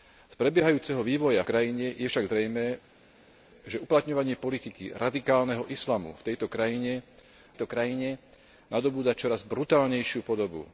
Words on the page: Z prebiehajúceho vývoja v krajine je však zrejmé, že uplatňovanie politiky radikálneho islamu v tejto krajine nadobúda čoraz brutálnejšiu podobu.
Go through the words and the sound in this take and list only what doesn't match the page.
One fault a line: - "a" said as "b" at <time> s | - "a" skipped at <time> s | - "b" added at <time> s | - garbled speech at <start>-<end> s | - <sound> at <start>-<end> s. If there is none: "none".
- "v" skipped at 1.4 s
- "tejto krajine" added at 7.5 s